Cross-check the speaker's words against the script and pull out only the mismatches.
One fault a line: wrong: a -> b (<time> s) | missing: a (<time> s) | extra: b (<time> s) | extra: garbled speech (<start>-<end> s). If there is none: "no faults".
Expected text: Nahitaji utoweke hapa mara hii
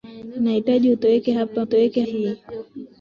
wrong: mara -> utoweke (1.6 s)